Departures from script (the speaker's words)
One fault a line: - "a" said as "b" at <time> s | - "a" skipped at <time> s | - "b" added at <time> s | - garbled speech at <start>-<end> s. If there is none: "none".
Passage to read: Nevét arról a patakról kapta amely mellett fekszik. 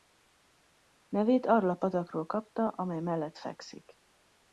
none